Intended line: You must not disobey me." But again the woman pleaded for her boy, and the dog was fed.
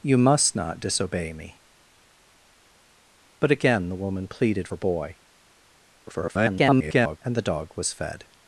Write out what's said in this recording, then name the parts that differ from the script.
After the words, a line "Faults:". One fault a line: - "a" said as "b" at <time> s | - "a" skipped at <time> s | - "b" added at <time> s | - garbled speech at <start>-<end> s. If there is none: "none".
You must not disobey me." But again the woman pleaded her boy, [garbled] and the dog was fed.
Faults:
- "for" skipped at 4.7 s
- garbled speech at 6.1-7.2 s